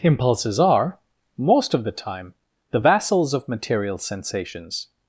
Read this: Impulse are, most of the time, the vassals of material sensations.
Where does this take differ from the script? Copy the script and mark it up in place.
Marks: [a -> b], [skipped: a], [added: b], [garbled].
[Impulse -> Impulses] are, most of the time, the vassals of material sensations.